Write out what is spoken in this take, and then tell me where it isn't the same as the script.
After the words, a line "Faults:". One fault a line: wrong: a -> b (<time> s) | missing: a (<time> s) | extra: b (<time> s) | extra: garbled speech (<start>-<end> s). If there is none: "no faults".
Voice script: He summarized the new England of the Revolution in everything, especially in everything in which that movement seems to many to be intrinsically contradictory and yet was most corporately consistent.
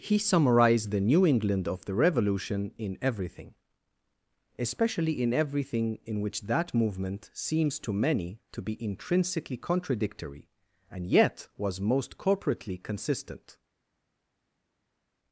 He summarized the new England of the Revolution in everything, especially in everything in which that movement seems to many to be intrinsically contradictory and yet was most corporately consistent.
Faults:
no faults